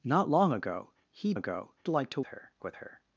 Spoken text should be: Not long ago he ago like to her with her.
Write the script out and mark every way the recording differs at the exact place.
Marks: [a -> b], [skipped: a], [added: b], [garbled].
Not long ago he ago like to her with her.